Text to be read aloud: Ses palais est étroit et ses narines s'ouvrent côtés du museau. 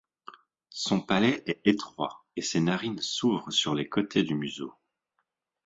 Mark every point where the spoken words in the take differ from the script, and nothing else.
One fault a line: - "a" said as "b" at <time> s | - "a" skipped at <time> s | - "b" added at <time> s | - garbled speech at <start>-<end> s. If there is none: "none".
- "Ses" said as "Son" at 0.7 s
- "sur les" added at 3.5 s